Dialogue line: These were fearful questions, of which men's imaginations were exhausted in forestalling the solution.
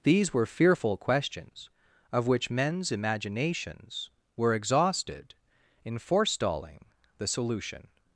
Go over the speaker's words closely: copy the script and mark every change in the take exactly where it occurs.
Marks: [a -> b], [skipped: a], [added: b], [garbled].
These were fearful questions, of which men's imaginations were exhausted in forestalling the solution.